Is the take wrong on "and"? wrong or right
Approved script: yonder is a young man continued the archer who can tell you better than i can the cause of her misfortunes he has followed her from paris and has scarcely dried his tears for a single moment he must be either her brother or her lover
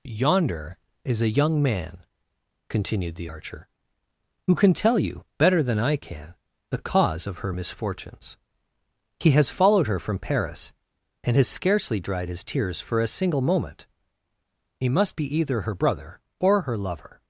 right